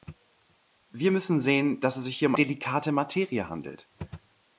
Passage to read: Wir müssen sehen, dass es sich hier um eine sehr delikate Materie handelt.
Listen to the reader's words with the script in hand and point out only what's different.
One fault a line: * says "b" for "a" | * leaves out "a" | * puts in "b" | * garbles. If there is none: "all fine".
* leaves out "eine sehr"